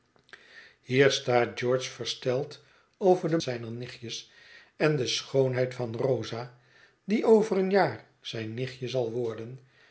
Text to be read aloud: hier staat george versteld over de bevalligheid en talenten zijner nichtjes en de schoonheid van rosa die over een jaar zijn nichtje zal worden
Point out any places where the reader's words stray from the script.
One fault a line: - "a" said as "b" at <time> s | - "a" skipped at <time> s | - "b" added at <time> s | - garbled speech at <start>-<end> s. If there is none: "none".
- "bevalligheid en talenten" skipped at 3.4 s